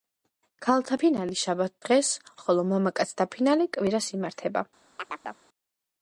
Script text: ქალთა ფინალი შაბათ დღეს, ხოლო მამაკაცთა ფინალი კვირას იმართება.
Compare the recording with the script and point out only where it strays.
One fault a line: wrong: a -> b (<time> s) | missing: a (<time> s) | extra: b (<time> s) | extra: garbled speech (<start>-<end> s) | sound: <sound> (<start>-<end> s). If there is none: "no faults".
sound: chirp (5.0-5.4 s)